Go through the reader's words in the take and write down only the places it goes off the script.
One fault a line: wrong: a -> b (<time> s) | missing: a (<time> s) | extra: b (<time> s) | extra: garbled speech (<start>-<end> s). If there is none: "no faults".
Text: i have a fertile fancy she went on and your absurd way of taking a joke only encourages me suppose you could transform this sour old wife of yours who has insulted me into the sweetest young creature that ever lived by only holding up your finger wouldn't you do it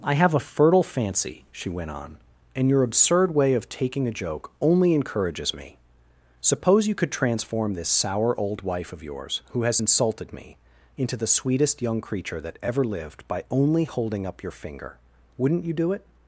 no faults